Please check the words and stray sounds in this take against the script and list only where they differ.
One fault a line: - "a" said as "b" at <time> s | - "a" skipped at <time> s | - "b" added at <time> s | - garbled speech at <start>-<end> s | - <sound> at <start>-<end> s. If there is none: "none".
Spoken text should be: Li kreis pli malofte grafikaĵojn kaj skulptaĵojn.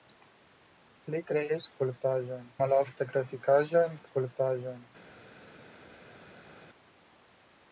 - "pli" said as "skulptaĵojn" at 1.7 s
- "kaj" skipped at 4.0 s